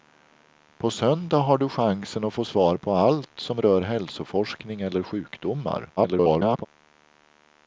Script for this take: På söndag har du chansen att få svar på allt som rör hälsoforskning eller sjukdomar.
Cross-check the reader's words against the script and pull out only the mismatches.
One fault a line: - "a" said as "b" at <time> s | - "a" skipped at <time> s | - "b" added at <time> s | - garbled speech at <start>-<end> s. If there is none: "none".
- garbled speech at 6.0-6.7 s